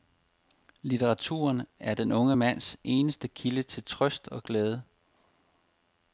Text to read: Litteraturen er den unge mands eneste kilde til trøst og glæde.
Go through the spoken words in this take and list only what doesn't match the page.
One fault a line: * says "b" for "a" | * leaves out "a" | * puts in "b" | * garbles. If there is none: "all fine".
all fine